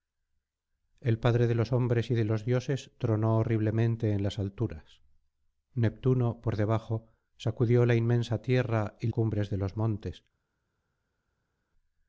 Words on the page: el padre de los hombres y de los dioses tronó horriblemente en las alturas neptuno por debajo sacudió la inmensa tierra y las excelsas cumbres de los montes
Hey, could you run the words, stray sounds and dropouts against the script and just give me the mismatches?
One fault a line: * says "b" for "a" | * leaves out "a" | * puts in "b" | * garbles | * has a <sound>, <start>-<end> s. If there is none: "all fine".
* leaves out "las excelsas"